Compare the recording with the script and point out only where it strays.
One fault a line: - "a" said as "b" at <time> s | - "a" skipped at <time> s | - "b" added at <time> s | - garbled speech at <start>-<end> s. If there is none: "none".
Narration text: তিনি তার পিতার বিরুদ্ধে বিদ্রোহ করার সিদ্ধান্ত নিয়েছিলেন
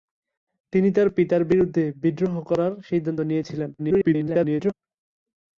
- garbled speech at 3.8-4.7 s